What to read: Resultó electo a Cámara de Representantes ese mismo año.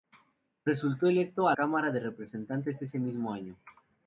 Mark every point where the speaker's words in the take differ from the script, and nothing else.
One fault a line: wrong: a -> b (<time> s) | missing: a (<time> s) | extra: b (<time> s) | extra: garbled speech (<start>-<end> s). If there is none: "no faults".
no faults